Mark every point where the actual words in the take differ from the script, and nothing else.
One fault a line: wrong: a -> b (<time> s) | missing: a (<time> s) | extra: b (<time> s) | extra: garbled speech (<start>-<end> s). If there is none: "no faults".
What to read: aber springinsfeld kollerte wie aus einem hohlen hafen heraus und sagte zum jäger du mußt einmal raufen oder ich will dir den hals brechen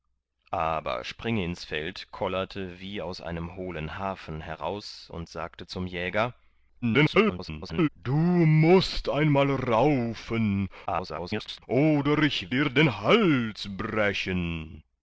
extra: garbled speech (6.8-7.9 s)
extra: garbled speech (10.9-11.6 s)
missing: will (12.5 s)